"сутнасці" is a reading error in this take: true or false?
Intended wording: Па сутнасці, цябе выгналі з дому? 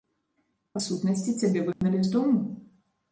false